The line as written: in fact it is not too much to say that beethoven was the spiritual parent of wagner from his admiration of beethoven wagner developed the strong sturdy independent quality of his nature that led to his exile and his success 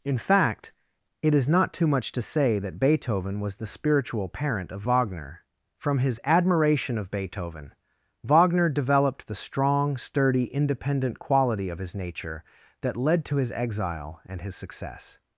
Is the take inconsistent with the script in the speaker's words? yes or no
no